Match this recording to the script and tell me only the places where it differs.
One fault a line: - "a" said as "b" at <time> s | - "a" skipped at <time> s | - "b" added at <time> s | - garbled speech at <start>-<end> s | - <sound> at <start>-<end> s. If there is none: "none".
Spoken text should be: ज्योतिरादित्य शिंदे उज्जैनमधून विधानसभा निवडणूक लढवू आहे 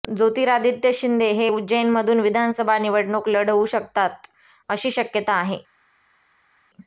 - "हे" added at 1.3 s
- "शकतात अशी शक्यता" added at 3.7 s